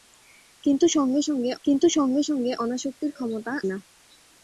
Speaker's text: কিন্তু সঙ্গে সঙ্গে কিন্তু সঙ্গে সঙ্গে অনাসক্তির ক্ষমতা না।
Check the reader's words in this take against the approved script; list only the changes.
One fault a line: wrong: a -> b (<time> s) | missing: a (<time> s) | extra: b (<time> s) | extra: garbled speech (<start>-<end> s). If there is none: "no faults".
no faults